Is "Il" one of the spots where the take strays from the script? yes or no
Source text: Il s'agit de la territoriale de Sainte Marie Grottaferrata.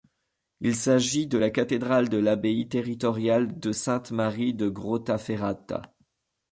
no